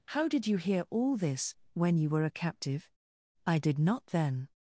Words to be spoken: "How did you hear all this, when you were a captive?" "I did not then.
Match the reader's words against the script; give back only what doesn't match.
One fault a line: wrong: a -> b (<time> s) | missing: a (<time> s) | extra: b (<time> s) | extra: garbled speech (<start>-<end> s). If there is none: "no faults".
no faults